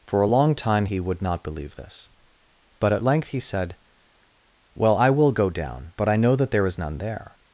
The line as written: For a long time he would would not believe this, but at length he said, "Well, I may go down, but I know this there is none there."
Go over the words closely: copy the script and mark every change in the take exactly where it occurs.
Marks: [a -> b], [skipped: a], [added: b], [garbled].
For a long time he would [skipped: would] not believe this, but at length he said, "Well, I [may -> will] go down, but I know [this -> that] there is none there."